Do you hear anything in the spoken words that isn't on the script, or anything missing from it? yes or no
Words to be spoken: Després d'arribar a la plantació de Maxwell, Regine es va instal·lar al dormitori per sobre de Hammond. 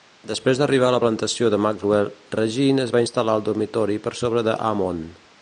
no